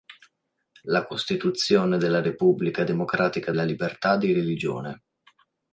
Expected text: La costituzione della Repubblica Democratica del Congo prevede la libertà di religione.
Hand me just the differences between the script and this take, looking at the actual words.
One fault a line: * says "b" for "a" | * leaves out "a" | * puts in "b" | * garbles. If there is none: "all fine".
* leaves out "del Congo prevede"